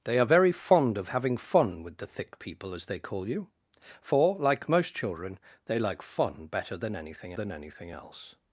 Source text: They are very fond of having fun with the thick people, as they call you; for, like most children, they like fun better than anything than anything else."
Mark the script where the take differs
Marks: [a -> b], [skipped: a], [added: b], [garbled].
They are very fond of having fun with the thick people, as they call you; for, like most children, they like fun better than anything than anything else."